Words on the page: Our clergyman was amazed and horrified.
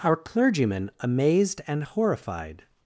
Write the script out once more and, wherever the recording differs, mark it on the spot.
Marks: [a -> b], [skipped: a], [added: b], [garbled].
Our clergyman [skipped: was] amazed and horrified.